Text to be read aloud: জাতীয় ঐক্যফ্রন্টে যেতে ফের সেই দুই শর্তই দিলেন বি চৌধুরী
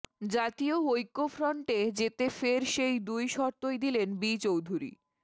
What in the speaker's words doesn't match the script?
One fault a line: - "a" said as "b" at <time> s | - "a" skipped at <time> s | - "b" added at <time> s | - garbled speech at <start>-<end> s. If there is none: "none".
none